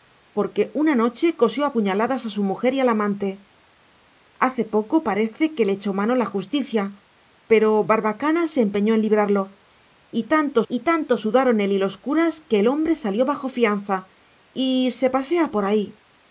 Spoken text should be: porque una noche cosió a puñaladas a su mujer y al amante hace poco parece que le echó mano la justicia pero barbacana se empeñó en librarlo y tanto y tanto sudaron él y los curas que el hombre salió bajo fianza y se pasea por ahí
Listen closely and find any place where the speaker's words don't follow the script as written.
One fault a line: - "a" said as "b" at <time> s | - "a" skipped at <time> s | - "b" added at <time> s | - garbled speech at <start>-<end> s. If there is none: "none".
none